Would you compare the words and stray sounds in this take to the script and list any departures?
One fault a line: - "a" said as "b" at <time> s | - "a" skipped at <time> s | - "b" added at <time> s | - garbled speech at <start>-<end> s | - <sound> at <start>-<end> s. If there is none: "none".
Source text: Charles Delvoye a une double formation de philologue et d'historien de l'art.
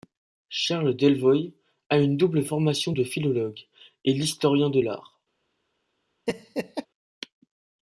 - laugh at 6.3-6.9 s